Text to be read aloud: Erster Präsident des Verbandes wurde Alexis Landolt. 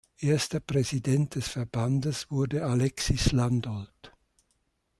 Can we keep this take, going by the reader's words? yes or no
yes